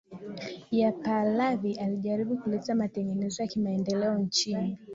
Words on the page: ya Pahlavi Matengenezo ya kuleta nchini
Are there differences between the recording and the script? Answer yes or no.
yes